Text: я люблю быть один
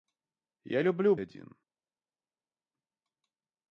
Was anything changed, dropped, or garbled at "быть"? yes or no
yes